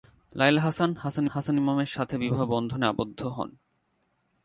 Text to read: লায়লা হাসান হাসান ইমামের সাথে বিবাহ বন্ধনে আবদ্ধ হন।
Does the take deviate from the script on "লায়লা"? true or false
false